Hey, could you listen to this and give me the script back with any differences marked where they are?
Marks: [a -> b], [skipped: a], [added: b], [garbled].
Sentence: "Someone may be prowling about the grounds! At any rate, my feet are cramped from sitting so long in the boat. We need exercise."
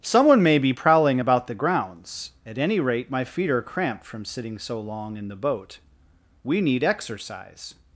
"Someone may be prowling about the grounds! At any rate, my feet are cramped from sitting so long in the boat. We need exercise."